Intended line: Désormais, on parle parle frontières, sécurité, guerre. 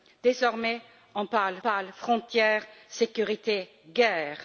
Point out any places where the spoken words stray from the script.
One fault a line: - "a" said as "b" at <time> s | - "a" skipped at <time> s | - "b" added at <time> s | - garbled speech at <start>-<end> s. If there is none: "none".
none